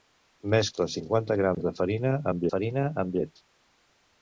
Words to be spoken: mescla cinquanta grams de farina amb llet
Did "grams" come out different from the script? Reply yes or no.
no